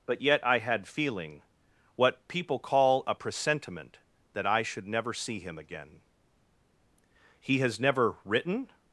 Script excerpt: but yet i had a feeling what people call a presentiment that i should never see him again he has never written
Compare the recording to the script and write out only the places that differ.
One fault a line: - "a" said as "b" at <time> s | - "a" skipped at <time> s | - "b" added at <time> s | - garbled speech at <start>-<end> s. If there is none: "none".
- "a" skipped at 0.9 s